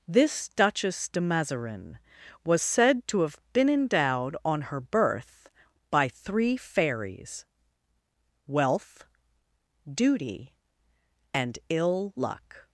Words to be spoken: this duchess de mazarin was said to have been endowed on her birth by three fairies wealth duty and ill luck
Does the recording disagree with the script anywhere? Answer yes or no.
no